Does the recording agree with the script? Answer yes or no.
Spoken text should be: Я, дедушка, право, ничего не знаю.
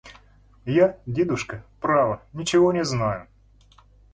yes